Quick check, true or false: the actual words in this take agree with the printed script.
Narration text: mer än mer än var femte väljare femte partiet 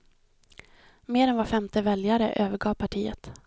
false